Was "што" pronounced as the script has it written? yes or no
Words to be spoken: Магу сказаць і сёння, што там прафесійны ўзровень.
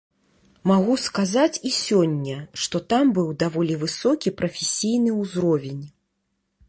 yes